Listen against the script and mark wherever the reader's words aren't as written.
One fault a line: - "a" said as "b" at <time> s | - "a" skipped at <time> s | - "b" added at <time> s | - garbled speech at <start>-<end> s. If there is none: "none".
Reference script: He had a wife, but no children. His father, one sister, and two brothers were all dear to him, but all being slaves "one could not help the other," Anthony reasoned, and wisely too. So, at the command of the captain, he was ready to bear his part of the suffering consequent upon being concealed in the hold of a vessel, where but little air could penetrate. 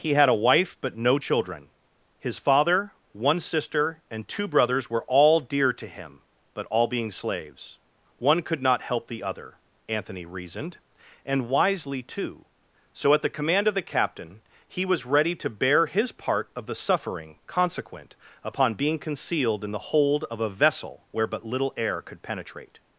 none